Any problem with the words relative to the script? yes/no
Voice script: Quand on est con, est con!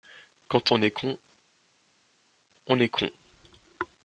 yes